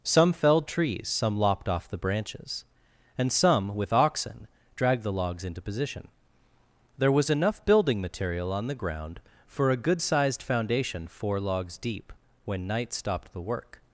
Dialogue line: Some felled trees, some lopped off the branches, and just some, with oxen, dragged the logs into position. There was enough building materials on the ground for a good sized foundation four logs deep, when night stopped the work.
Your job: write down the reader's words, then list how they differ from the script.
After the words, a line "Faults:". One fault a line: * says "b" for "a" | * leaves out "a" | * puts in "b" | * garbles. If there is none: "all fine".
Some felled trees, some lopped off the branches, and some, with oxen, dragged the logs into position. There was enough building material on the ground for a good sized foundation four logs deep, when night stopped the work.
Faults:
* leaves out "just"
* says "material" for "materials"